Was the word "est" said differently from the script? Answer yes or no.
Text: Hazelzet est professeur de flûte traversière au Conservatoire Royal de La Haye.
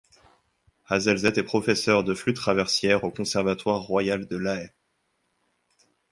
no